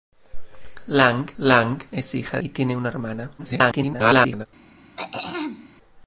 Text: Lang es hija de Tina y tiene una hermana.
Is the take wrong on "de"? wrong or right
wrong